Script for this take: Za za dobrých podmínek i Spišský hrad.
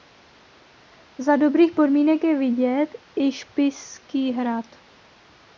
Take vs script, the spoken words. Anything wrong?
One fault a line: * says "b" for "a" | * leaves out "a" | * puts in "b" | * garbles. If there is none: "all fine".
* leaves out "za"
* puts in "je vidět"